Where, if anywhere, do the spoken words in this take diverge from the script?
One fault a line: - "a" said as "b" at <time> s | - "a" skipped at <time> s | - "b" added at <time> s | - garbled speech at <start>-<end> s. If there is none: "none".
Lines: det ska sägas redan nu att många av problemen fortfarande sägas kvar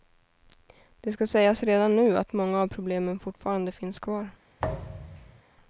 - "sägas" said as "finns" at 3.7 s